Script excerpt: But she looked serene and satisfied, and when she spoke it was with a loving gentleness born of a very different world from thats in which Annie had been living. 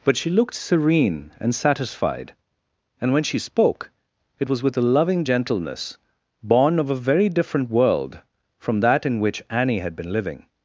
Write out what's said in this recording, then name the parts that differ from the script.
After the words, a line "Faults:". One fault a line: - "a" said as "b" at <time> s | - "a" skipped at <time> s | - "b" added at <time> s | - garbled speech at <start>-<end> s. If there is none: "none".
But she looked serene and satisfied, and when she spoke it was with a loving gentleness born of a very different world from that in which Annie had been living.
Faults:
- "thats" said as "that" at 8.8 s